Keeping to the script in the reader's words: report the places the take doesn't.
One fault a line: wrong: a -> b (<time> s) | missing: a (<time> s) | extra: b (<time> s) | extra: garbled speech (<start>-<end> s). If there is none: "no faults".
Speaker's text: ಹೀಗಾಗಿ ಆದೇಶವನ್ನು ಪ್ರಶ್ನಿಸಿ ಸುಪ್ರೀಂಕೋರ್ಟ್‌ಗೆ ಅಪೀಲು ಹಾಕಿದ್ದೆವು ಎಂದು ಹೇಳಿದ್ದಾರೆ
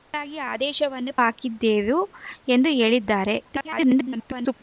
missing: ಪ್ರಶ್ನಿಸಿ ಸುಪ್ರೀಂಕೋರ್ಟ್‌ಗೆ ಅಪೀಲು (1.1 s)
extra: garbled speech (3.4-4.5 s)